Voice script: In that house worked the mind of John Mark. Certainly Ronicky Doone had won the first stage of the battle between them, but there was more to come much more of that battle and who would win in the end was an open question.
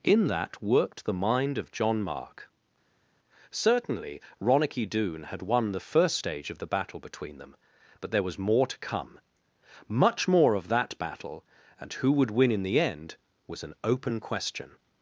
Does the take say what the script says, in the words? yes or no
no